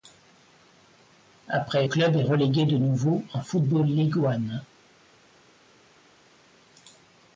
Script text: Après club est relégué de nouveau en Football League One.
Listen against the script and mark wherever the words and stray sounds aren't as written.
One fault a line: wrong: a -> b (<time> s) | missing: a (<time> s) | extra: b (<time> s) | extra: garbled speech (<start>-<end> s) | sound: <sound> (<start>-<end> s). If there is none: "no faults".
no faults